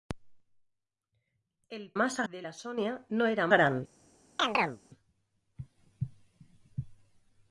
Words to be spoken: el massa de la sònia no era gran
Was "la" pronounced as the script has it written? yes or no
yes